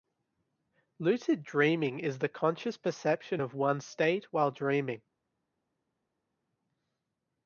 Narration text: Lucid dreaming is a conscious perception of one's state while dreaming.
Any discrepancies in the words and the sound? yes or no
yes